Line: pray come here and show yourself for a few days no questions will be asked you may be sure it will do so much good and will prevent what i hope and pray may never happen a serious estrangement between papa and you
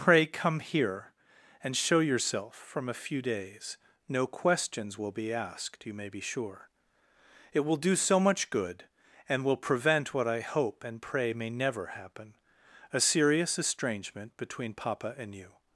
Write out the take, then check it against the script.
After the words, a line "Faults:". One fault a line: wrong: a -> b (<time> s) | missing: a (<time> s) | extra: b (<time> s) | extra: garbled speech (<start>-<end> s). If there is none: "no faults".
pray come here and show yourself from a few days no questions will be asked you may be sure it will do so much good and will prevent what i hope and pray may never happen a serious estrangement between papa and you
Faults:
wrong: for -> from (2.5 s)